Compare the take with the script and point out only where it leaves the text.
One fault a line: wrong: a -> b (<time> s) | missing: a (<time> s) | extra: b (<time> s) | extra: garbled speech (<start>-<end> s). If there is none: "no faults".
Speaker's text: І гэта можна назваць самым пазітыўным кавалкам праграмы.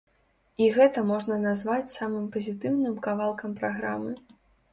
no faults